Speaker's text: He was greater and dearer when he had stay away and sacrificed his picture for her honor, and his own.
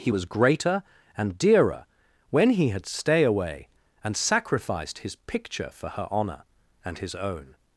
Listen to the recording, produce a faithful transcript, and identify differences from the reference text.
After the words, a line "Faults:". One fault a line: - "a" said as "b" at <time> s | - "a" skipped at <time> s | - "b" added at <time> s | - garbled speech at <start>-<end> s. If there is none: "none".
He was greater and dearer when he had stay away and sacrificed his picture for her honor, and his own.
Faults:
none